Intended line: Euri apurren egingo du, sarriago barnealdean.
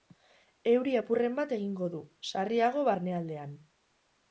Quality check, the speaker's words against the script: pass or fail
fail